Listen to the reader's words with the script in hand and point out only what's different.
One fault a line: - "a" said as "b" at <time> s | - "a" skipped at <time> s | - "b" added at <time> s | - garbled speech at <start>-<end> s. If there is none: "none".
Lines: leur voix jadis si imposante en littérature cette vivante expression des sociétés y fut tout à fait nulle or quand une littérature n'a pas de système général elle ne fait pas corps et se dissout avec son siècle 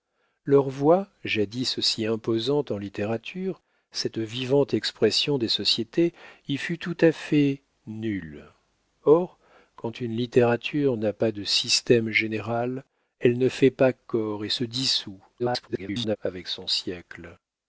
- garbled speech at 15.4-16.2 s